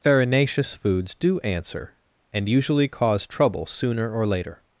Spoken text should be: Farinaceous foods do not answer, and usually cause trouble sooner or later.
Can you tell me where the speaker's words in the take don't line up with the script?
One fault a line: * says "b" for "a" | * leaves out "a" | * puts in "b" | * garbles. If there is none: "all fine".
* leaves out "not"